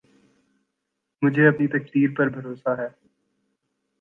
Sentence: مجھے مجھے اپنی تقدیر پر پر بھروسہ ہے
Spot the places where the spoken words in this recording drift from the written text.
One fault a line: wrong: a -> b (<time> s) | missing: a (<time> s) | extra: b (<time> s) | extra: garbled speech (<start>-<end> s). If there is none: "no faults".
missing: مجھے (1.5 s)
missing: پر (2.3 s)